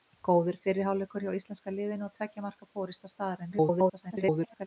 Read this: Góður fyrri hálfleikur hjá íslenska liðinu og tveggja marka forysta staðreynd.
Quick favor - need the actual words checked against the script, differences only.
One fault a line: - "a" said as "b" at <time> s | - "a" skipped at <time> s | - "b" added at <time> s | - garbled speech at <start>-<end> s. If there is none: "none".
- garbled speech at 3.5-4.7 s